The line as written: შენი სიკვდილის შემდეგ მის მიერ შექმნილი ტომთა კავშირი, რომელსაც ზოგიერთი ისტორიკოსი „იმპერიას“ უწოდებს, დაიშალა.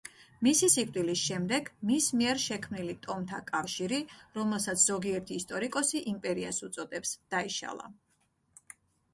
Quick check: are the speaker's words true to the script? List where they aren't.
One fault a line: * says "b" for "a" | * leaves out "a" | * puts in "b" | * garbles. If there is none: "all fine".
* says "მისი" for "შენი"